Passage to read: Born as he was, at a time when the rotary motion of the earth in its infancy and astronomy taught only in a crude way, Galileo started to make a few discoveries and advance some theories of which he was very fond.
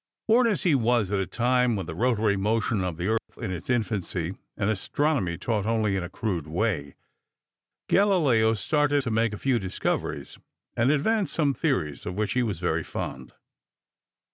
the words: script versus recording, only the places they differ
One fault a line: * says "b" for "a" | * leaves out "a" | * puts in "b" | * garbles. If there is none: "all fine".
all fine